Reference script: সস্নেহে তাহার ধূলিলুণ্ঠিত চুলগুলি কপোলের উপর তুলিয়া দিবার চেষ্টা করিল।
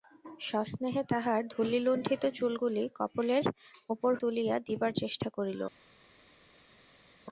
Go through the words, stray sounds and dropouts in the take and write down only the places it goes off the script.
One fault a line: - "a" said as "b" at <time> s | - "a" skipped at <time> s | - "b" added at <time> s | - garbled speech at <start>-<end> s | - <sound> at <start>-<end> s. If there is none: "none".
none